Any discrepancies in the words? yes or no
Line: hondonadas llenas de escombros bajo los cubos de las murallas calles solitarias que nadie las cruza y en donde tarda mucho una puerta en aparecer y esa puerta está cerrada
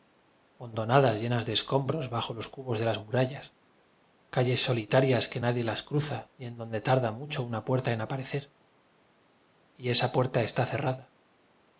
no